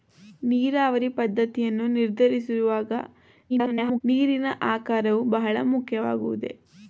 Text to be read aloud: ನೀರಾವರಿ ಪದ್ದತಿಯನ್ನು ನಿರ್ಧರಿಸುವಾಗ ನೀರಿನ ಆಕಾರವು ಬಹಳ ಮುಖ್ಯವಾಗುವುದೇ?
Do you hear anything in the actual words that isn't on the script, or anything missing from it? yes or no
yes